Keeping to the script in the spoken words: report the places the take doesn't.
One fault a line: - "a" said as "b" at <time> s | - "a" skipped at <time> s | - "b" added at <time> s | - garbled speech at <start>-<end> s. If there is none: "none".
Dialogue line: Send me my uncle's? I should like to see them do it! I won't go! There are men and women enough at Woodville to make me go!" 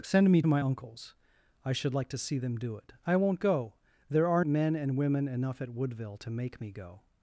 none